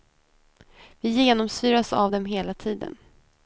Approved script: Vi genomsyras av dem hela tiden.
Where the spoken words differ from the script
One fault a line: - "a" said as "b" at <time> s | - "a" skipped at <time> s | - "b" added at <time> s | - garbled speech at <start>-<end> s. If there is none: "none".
none